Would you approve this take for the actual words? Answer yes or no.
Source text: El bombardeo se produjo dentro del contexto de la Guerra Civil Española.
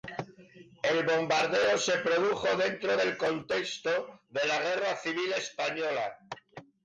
yes